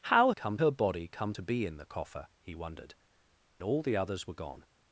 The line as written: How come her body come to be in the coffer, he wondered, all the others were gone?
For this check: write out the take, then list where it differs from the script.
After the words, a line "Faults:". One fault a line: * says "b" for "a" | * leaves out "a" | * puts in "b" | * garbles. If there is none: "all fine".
How come her body come to be in the coffer, he wondered, all the others were gone?
Faults:
all fine